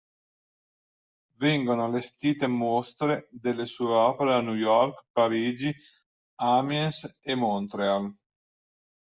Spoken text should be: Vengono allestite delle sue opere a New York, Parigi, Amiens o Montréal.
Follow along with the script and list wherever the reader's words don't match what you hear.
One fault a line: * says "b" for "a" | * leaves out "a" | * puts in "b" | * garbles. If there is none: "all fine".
* puts in "mostre"
* says "e" for "o"